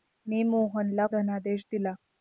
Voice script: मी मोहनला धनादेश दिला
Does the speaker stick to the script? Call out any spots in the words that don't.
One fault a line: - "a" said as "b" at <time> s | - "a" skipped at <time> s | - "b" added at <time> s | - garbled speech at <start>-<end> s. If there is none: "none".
none